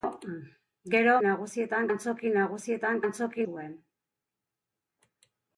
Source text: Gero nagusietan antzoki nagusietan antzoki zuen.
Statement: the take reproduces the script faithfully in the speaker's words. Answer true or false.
true